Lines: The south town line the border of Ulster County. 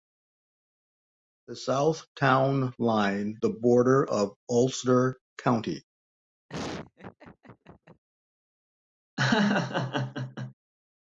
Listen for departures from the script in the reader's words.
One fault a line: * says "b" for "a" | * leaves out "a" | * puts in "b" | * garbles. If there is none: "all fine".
all fine